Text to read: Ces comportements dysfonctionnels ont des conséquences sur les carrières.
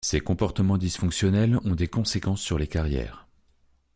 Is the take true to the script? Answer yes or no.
yes